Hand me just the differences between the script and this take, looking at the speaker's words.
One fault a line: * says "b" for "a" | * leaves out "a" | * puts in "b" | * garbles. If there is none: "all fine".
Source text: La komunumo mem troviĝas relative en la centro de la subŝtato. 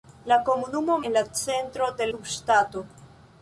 * leaves out "mem troviĝas relative"
* leaves out "la"